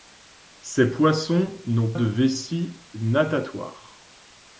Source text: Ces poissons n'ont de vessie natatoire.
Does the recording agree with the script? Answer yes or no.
yes